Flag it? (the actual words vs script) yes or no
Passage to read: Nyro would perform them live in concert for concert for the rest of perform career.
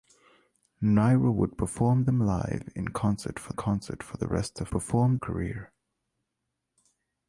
no